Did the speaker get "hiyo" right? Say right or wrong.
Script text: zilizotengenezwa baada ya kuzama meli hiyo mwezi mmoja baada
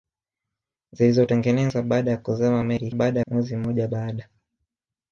wrong